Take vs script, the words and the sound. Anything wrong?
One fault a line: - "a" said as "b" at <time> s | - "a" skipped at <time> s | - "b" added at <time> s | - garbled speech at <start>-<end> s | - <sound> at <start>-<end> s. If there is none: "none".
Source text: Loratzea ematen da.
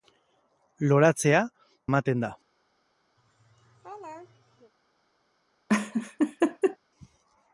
- laugh at 3.2-4.7 s
- laugh at 5.7-6.8 s